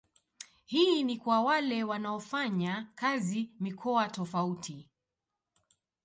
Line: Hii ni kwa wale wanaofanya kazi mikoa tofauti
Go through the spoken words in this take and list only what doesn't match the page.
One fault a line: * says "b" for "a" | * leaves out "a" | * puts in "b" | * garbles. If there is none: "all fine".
all fine